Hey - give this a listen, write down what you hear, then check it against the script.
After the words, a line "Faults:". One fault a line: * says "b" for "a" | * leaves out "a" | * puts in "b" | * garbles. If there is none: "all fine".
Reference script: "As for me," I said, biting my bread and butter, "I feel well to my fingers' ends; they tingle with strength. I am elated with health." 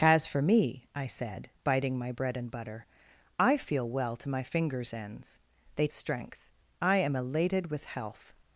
"As for me," I said, biting my bread and butter, "I feel well to my fingers' ends; they strength. I am elated with health."
Faults:
* leaves out "tingle with"